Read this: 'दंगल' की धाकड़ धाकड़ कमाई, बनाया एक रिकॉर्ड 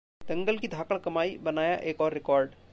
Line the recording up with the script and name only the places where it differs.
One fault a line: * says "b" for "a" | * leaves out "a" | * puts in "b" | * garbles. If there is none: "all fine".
* leaves out "धाकड़"
* puts in "और"